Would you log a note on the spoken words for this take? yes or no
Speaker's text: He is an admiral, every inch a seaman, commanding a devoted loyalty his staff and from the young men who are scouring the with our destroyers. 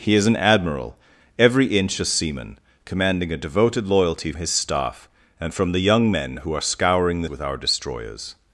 no